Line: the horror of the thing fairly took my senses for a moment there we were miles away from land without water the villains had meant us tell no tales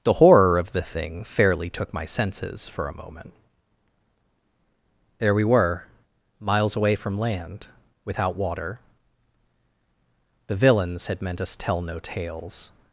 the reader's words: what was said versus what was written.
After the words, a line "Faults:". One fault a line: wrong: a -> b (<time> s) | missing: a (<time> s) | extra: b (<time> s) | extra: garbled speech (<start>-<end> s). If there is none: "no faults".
the horror of the thing fairly took my senses for a moment there we were miles away from land without water the villains had meant us tell no tales
Faults:
no faults